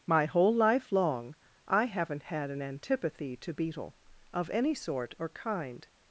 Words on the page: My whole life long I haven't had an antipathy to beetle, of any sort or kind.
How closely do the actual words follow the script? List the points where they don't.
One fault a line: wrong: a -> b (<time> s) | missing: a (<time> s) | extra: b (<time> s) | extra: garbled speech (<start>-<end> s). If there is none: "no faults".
no faults